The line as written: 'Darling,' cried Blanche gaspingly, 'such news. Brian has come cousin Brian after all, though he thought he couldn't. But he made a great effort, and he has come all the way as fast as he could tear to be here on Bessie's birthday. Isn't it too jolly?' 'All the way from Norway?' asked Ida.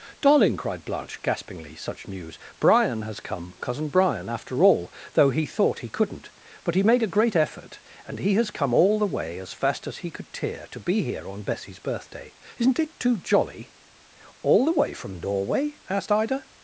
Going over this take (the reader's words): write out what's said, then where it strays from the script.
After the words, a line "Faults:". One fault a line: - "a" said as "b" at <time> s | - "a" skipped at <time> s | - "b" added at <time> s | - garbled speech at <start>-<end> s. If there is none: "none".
'Darling,' cried Blanche gaspingly, 'such news. Brian has come cousin Brian after all, though he thought he couldn't. But he made a great effort, and he has come all the way as fast as he could tear to be here on Bessie's birthday. Isn't it too jolly?' 'All the way from Norway?' asked Ida.
Faults:
none